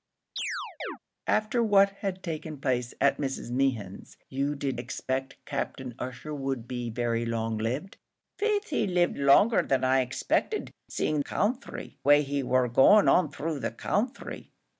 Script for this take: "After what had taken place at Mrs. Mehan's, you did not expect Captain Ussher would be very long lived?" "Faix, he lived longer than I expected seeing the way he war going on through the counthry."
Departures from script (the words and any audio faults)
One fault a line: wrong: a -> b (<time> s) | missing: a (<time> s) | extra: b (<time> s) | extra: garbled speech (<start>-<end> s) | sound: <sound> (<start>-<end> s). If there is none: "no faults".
sound: chirp (0.4-1.0 s)
missing: not (4.8 s)
wrong: the -> counthry (11.2 s)